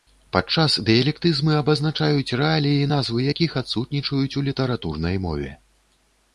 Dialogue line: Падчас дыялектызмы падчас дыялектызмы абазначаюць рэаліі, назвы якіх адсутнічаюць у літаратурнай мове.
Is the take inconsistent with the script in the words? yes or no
yes